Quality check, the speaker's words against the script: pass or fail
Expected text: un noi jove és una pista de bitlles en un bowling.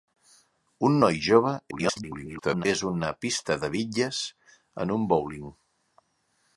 fail